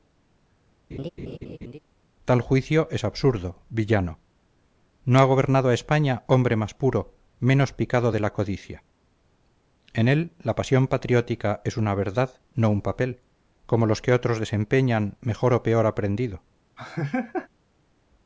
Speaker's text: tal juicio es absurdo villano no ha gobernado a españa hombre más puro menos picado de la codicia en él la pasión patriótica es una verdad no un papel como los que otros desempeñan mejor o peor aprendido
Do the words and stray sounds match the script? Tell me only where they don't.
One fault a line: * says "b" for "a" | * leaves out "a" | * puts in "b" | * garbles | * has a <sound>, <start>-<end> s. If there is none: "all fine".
* has a laugh, 0.9-1.8 s
* has a laugh, 16.8-17.5 s